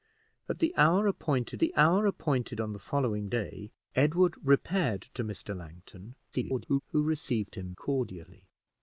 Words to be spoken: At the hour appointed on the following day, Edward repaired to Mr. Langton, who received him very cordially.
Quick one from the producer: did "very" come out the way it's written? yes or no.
no